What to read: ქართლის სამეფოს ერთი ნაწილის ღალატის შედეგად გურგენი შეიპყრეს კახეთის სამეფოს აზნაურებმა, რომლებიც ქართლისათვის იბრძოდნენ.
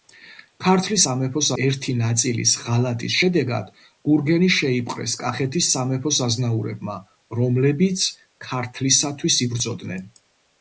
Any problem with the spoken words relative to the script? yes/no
no